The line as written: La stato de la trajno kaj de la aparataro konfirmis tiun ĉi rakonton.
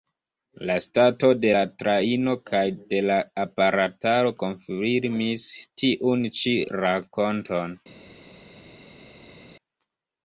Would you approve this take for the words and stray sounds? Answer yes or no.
yes